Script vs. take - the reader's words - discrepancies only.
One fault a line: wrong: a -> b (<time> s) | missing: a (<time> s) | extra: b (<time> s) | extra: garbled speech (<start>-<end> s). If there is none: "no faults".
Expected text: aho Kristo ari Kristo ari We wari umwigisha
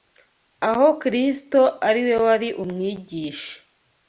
missing: Kristo ari (2.0 s)